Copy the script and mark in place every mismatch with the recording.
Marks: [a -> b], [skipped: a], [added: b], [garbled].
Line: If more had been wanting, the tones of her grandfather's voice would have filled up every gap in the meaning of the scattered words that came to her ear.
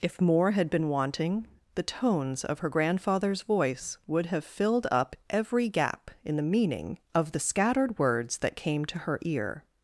If more had been wanting, the tones of her grandfather's voice would have filled up every gap in the meaning of the scattered words that came to her ear.